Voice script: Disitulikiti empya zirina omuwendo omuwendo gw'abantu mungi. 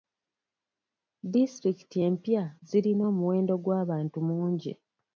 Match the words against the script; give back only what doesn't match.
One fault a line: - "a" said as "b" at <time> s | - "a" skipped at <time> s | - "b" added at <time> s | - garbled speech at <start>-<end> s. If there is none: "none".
- "omuwendo" skipped at 3.5 s